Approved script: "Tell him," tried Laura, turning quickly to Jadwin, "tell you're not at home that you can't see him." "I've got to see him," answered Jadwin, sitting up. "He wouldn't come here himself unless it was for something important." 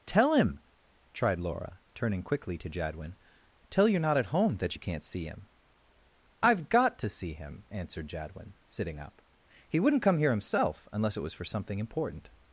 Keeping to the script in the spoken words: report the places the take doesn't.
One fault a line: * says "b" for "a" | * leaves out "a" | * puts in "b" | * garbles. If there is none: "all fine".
all fine